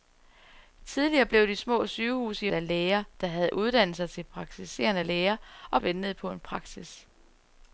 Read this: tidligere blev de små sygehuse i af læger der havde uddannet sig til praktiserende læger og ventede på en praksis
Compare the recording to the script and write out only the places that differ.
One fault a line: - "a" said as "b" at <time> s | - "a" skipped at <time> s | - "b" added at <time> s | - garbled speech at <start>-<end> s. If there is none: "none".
none